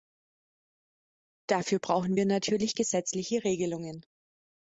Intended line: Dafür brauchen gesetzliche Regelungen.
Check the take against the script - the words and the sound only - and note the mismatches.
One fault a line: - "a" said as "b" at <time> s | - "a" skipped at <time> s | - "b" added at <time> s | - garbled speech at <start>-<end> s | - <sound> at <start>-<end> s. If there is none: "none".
- "wir natürlich" added at 2.2 s